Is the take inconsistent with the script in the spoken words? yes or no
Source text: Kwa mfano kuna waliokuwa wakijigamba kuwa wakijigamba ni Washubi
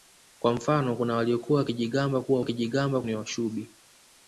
no